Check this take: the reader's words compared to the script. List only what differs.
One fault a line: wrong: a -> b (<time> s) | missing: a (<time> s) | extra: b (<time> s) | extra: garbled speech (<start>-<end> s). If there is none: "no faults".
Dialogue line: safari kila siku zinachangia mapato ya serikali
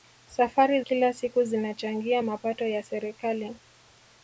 no faults